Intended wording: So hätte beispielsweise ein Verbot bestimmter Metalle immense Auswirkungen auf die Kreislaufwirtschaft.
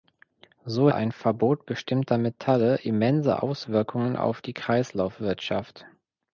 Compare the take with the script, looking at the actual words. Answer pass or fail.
fail